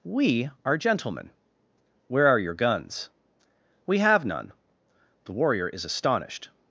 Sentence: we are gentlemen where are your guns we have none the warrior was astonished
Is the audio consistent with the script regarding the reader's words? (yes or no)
no